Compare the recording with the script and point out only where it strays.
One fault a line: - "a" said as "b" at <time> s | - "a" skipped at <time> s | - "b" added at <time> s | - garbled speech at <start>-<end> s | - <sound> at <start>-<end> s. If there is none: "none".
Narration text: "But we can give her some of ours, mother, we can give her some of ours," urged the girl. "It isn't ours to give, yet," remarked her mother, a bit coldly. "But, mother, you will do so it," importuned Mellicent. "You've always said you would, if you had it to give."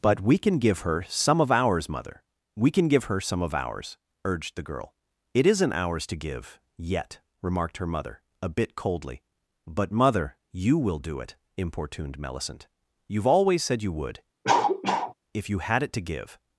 - "so" skipped at 11.2 s
- cough at 14.4-15.1 s